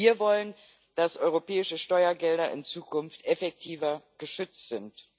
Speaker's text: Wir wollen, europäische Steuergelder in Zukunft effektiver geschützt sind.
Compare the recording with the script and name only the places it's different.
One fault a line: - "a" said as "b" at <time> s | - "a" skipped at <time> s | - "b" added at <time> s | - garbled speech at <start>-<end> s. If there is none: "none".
- "dass" added at 0.9 s